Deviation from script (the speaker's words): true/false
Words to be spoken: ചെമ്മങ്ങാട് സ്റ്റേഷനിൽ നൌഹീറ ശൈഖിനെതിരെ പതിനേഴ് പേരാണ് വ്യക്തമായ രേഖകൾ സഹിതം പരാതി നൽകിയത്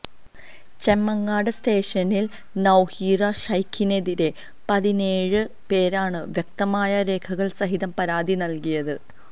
false